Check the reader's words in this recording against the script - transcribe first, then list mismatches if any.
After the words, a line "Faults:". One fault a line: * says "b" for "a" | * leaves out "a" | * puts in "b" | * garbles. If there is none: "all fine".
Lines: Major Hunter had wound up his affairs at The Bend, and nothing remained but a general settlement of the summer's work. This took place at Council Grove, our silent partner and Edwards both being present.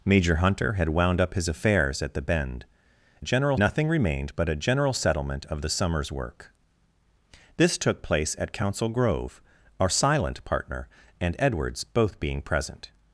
Major Hunter had wound up his affairs at The Bend, general nothing remained but a general settlement of the summer's work. This took place at Council Grove, our silent partner and Edwards both being present.
Faults:
* says "general" for "and"